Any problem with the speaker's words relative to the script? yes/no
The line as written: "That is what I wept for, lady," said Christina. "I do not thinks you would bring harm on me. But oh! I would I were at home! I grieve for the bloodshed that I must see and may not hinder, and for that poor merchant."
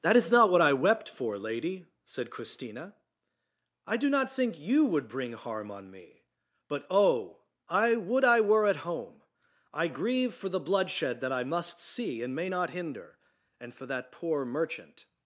yes